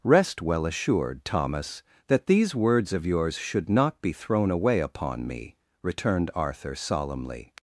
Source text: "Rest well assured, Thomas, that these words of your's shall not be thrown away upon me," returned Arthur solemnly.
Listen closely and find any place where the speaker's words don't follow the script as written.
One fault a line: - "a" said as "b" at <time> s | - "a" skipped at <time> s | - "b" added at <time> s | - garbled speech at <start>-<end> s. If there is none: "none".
- "shall" said as "should" at 3.4 s